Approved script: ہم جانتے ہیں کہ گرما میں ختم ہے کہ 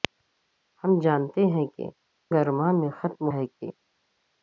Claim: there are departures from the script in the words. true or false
false